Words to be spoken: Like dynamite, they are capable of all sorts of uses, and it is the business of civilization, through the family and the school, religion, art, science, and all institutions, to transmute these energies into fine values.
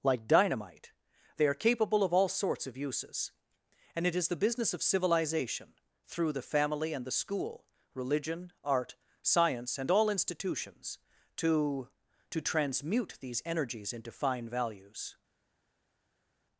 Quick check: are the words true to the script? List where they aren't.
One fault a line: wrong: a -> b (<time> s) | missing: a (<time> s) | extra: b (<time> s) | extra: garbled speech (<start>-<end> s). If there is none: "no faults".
extra: to (12.3 s)